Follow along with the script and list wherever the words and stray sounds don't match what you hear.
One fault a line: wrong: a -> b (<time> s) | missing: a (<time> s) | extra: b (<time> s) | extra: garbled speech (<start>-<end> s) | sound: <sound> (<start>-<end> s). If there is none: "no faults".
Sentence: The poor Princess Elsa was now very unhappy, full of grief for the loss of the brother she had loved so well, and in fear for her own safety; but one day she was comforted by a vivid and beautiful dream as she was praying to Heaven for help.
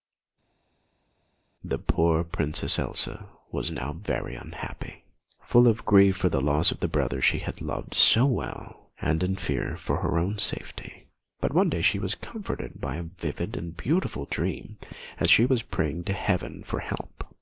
no faults